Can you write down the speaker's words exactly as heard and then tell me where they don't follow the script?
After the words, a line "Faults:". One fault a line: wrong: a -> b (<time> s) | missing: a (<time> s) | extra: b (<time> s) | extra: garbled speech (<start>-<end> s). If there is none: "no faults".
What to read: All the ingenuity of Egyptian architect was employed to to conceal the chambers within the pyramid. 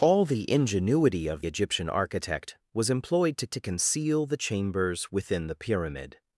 All the ingenuity of Egyptian architect was employed to to conceal the chambers within the pyramid.
Faults:
no faults